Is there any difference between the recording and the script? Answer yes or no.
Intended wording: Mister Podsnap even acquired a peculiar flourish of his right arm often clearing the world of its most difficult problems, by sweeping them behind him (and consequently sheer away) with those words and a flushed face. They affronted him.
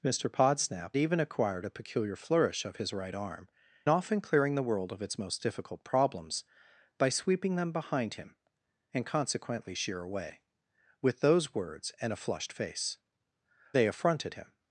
no